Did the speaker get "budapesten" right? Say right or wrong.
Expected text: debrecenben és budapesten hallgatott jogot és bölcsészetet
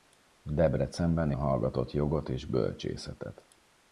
wrong